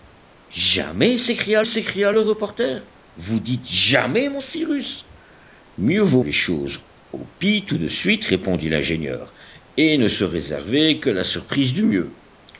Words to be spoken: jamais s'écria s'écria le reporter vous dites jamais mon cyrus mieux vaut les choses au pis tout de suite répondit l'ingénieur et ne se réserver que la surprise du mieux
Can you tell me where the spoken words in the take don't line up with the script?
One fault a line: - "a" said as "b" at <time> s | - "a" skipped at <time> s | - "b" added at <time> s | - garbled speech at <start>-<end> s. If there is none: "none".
none